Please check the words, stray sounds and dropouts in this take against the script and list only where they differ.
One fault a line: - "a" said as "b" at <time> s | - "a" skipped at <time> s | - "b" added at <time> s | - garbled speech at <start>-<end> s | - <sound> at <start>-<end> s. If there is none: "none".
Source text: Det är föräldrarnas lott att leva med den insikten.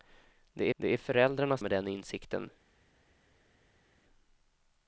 - "det" added at 0.8 s
- "lott att leva" skipped at 1.7 s